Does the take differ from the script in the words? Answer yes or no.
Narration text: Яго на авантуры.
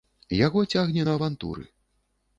yes